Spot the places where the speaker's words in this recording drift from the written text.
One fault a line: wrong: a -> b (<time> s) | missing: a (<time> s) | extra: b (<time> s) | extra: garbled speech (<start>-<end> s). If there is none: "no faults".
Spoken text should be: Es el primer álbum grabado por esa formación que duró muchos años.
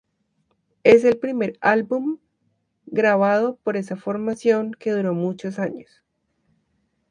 no faults